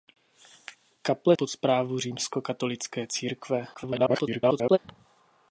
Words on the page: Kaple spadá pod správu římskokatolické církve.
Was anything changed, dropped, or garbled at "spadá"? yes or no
yes